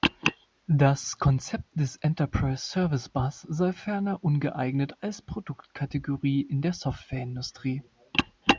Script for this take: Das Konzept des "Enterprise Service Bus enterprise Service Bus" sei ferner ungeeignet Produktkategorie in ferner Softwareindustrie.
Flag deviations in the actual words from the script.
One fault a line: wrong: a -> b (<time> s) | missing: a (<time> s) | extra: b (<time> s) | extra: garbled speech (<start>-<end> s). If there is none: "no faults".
missing: enterprise Service Bus (3.4 s)
extra: als (5.0 s)
wrong: ferner -> der (6.6 s)